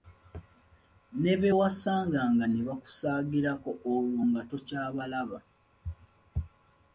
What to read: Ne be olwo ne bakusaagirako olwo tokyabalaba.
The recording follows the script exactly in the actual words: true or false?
false